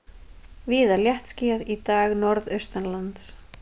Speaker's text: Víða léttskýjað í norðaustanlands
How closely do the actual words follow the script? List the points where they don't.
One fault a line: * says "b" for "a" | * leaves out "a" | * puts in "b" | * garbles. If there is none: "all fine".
* puts in "dag"